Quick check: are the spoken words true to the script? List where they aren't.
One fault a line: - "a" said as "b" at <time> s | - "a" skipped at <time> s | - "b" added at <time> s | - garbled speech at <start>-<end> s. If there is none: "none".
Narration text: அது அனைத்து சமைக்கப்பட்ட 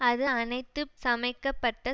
none